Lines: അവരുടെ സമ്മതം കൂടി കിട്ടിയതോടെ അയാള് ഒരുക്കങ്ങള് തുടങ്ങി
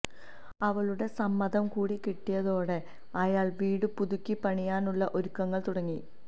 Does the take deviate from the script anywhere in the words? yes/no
yes